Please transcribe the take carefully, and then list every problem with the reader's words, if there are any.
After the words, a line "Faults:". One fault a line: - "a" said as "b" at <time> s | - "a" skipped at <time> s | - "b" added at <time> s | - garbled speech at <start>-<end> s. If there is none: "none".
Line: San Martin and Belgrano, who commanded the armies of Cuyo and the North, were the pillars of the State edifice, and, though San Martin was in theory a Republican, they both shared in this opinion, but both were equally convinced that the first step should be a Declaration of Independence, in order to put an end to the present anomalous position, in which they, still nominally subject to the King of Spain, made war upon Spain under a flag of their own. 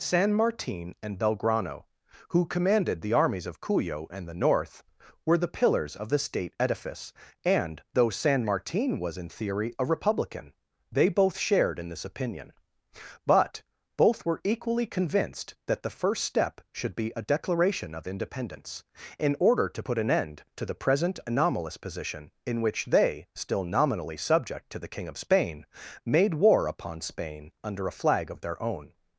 San Martin and Belgrano, who commanded the armies of Cuyo and the North, were the pillars of the State edifice, and, though San Martin was in theory a Republican, they both shared in this opinion, but both were equally convinced that the first step should be a Declaration of Independence, in order to put an end to the present anomalous position, in which they, still nominally subject to the King of Spain, made war upon Spain under a flag of their own.
Faults:
none